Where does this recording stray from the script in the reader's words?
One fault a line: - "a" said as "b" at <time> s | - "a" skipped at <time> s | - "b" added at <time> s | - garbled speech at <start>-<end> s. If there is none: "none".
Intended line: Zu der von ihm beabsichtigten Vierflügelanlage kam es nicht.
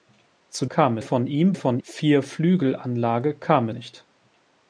- "der" said as "kam" at 0.6 s
- "beabsichtigten" said as "von" at 1.5 s
- "es" skipped at 3.7 s